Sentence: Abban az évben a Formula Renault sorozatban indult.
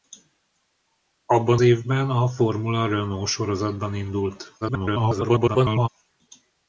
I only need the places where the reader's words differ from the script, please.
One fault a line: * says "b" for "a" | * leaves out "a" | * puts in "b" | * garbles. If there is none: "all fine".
* leaves out "az"
* garbles